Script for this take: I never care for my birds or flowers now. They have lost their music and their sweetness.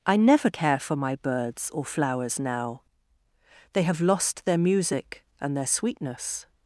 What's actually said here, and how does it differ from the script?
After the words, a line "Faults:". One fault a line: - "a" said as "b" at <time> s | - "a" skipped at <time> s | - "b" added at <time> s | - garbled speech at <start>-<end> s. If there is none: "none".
I never care for my birds or flowers now. They have lost their music and their sweetness.
Faults:
none